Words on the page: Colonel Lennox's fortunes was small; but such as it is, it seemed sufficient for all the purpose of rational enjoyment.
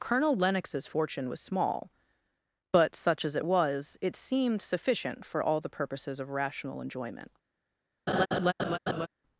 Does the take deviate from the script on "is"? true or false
true